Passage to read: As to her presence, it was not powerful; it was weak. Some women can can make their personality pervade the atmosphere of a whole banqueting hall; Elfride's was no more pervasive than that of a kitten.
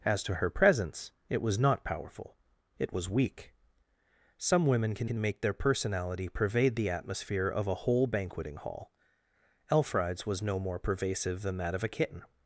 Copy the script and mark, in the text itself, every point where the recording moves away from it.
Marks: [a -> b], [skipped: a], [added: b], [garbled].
As to her presence, it was not powerful; it was weak. Some women can can make their personality pervade the atmosphere of a whole banqueting hall; Elfride's was no more pervasive than that of a kitten.